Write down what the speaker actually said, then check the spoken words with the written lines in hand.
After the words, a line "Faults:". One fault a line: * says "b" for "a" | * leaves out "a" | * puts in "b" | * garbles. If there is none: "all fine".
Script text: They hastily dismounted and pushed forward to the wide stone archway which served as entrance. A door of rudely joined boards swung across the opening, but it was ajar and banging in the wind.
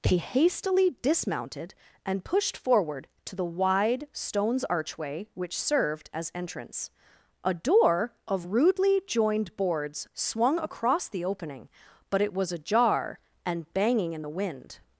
They hastily dismounted and pushed forward to the wide stones archway which served as entrance. A door of rudely joined boards swung across the opening, but it was ajar and banging in the wind.
Faults:
* says "stones" for "stone"